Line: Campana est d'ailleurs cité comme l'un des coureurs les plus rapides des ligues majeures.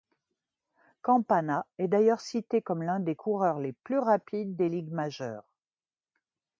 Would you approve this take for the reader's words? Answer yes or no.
yes